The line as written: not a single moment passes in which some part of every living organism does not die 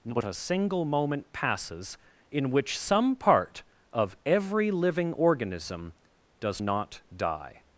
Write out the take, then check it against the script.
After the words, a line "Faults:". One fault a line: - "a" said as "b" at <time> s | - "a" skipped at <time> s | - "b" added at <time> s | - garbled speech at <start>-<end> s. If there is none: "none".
not a single moment passes in which some part of every living organism does not die
Faults:
none